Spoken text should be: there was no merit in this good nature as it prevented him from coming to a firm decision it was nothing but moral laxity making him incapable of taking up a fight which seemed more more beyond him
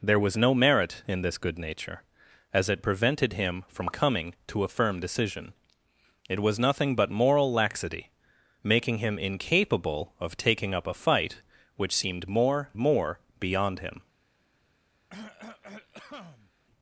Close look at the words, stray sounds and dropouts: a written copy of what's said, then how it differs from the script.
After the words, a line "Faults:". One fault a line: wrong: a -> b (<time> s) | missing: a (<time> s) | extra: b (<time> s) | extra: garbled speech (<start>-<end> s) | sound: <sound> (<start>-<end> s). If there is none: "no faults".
there was no merit in this good nature as it prevented him from coming to a firm decision it was nothing but moral laxity making him incapable of taking up a fight which seemed more more beyond him
Faults:
sound: cough (15.1-16.5 s)